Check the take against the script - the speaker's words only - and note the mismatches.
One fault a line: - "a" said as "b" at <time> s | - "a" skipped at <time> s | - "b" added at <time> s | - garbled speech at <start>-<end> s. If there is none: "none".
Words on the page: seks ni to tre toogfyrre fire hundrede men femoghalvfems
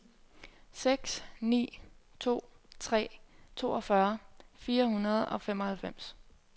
- "men" said as "og" at 5.3 s